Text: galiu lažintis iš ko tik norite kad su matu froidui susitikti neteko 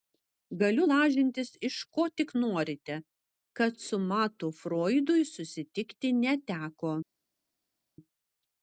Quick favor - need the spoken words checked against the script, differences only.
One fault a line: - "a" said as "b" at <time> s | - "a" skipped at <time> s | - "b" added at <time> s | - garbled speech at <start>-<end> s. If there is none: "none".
none